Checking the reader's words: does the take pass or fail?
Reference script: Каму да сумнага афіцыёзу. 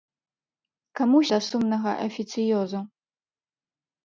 pass